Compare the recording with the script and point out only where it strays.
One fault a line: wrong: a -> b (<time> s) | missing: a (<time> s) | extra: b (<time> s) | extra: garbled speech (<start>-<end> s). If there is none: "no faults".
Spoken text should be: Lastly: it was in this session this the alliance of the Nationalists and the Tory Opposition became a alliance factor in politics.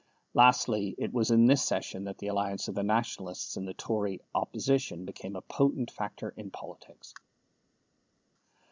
wrong: this -> that (2.0 s)
wrong: alliance -> potent (5.4 s)